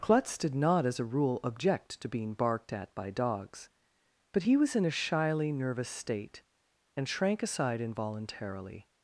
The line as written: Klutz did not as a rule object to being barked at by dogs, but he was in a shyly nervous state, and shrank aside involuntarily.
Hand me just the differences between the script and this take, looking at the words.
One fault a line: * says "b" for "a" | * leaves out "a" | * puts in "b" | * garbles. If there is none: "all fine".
all fine